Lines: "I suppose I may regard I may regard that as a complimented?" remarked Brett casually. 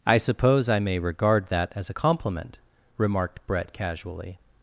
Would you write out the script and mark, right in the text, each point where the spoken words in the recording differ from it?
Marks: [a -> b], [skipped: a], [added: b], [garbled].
"I suppose I may regard [skipped: I may regard] that as a [complimented?" -> compliment] remarked Brett casually.